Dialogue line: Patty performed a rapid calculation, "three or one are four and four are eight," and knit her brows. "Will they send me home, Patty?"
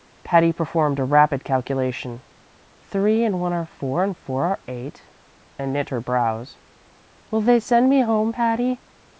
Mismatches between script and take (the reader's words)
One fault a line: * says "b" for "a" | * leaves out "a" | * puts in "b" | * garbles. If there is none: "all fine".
* says "and" for "or"